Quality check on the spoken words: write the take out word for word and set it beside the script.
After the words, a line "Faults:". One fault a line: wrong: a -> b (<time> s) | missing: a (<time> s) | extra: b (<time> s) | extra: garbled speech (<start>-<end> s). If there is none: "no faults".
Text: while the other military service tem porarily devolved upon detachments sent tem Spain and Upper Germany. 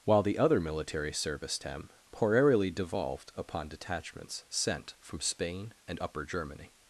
while the other military service tem porarily devolved upon detachments sent from Spain and Upper Germany.
Faults:
wrong: tem -> from (5.0 s)